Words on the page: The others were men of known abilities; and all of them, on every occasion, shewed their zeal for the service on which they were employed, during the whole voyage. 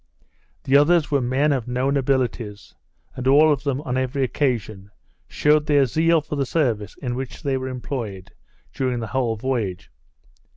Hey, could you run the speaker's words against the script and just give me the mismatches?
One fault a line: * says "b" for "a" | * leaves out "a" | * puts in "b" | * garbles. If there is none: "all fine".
* says "in" for "on"